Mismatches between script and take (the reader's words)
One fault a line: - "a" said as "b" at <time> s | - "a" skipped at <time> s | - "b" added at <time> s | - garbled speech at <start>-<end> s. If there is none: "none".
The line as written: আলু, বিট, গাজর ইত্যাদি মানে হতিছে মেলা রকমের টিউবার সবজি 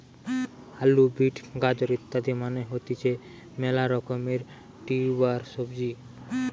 none